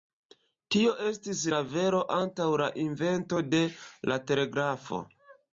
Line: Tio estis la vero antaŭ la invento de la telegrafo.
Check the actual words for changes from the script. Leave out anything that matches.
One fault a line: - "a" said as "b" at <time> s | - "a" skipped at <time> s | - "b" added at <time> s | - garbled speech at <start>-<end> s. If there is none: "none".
none